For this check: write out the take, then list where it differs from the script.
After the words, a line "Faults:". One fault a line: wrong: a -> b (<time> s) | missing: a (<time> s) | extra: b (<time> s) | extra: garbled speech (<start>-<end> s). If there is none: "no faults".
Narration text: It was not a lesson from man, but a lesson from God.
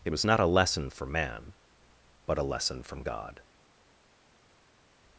It was not a lesson for man, but a lesson from God.
Faults:
wrong: from -> for (0.9 s)